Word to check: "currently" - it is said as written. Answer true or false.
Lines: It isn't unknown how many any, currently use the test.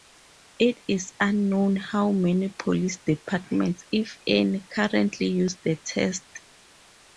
true